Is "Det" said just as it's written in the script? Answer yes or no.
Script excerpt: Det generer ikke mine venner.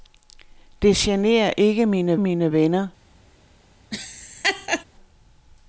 yes